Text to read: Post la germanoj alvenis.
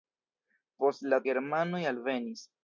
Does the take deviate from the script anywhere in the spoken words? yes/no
no